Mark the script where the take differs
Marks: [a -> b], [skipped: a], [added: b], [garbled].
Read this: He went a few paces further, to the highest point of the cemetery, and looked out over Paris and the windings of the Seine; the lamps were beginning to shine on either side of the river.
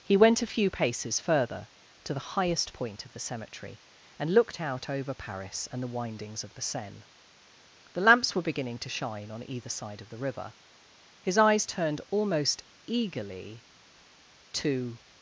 He went a few paces further, to the highest point of the cemetery, and looked out over Paris and the windings of the Seine; the lamps were beginning to shine on either side of the river. [added: His eyes turned almost eagerly to]